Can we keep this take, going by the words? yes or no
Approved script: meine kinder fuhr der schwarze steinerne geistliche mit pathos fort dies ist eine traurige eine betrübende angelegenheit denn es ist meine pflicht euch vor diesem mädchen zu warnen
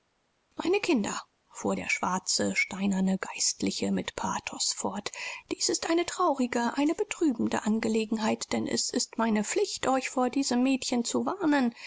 yes